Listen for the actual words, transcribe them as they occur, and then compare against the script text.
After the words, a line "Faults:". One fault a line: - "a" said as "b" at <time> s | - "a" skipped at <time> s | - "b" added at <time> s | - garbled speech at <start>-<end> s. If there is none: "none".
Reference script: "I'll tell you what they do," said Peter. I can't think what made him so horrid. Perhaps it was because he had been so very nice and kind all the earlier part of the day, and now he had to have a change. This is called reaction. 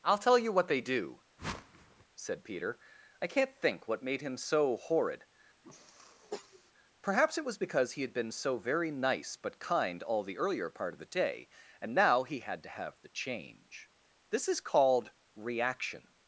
"I'll tell you what they do," said Peter. I can't think what made him so horrid. Perhaps it was because he had been so very nice but kind all the earlier part of the day, and now he had to have the change. This is called reaction.
Faults:
- "and" said as "but" at 9.4 s
- "a" said as "the" at 13.0 s